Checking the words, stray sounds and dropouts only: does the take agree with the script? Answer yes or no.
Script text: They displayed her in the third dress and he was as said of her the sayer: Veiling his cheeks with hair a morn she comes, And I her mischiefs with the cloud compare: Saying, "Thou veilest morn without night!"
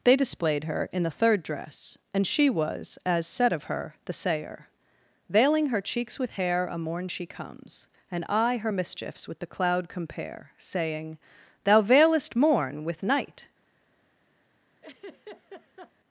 no